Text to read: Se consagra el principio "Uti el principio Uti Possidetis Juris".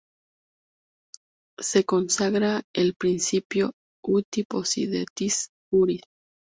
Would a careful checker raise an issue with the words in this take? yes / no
yes